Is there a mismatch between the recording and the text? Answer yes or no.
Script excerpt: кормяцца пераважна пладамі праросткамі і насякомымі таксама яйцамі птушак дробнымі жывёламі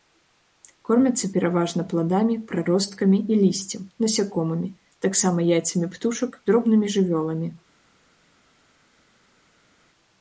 yes